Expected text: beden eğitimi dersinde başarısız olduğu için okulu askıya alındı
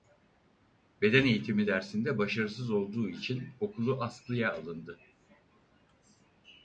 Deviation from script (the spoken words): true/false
false